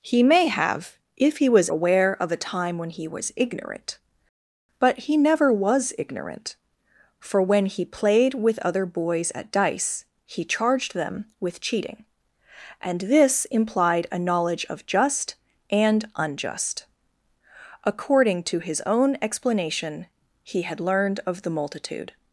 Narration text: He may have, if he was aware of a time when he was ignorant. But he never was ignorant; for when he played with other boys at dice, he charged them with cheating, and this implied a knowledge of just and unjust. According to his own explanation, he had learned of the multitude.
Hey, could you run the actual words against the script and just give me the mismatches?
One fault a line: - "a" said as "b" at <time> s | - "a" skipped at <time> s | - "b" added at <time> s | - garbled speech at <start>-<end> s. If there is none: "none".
none